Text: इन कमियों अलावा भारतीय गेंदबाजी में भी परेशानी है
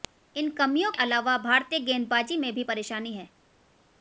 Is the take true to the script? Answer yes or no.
yes